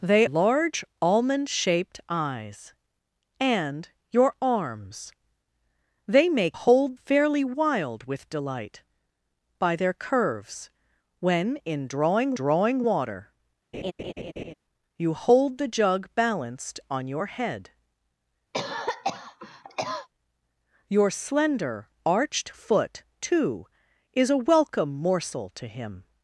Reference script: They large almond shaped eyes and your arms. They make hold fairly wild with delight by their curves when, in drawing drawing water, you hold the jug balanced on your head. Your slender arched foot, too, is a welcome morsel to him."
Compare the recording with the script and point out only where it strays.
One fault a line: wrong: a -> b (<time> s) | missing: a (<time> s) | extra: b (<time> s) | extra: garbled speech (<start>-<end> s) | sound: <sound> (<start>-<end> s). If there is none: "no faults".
sound: laugh (13.7-14.5 s)
sound: cough (18.5-20.1 s)